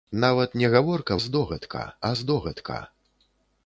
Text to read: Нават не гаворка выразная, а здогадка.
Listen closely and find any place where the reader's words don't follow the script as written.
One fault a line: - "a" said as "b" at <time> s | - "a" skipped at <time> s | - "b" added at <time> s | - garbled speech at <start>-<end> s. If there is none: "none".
- "выразная" said as "здогадка" at 1.2 s